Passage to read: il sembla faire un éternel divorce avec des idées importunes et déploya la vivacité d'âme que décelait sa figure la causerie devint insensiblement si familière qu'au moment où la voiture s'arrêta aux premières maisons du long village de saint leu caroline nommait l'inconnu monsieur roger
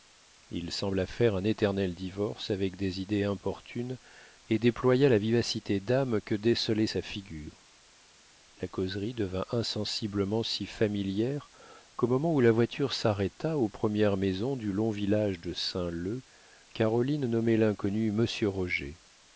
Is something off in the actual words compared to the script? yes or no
no